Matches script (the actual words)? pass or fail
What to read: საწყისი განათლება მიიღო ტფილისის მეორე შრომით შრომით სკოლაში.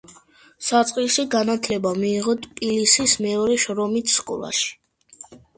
fail